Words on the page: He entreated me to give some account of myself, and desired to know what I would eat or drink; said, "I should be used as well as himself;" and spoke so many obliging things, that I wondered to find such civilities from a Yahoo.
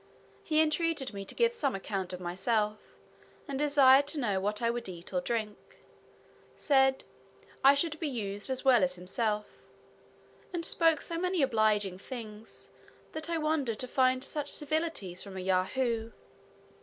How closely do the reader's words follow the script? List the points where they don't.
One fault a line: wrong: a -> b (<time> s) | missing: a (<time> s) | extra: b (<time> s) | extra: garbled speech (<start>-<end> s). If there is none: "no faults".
no faults